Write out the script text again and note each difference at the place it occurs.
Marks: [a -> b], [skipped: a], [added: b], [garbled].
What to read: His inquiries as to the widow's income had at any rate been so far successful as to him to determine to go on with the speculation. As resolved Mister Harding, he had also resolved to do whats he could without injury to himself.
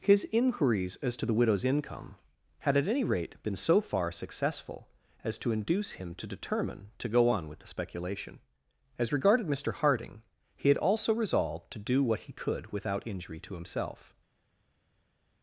His inquiries as to the widow's income had at any rate been so far successful as to [added: induce] him to determine to go on with the speculation. As [resolved -> regarded] Mister Harding, he had also resolved to do [whats -> what] he could without injury to himself.